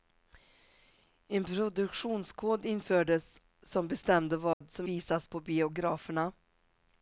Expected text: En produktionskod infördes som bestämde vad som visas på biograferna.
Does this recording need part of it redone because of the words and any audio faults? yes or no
yes